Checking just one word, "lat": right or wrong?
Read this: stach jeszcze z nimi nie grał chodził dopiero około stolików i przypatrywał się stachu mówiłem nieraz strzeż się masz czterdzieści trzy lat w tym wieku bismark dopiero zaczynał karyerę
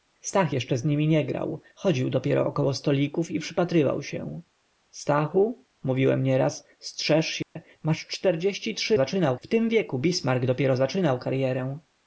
wrong